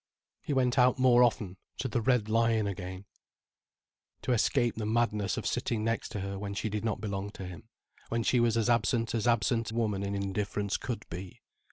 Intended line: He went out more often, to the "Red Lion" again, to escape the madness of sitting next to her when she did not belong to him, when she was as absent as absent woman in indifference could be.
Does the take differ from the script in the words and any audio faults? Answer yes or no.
no